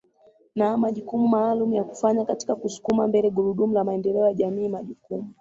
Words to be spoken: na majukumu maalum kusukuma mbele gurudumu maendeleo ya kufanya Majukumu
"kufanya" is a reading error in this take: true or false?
true